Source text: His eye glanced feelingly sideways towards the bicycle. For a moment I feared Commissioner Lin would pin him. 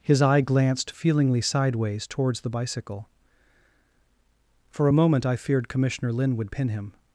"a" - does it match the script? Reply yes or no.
yes